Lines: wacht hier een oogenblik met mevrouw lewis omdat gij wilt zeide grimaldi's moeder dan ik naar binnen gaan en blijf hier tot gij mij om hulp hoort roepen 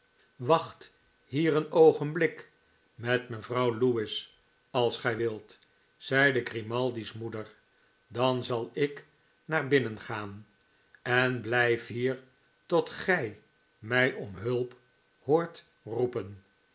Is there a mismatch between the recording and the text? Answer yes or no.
yes